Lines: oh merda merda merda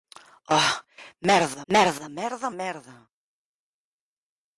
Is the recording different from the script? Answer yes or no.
yes